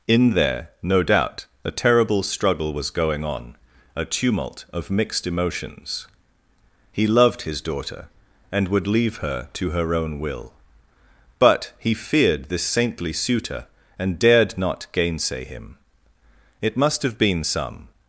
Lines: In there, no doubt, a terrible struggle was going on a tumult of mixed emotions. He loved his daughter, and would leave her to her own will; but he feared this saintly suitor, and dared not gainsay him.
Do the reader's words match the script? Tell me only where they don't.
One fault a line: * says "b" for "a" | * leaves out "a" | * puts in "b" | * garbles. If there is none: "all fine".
* puts in "It must have been some"